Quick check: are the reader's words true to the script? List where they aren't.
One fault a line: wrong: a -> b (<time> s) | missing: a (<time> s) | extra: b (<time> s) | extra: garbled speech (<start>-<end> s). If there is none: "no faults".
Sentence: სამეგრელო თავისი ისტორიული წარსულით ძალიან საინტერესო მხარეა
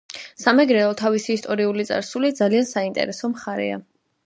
no faults